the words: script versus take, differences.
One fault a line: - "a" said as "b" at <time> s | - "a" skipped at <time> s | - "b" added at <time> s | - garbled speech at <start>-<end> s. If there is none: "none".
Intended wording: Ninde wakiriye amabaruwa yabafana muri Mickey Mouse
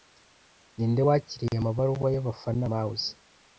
- "muri Mickey" skipped at 2.6 s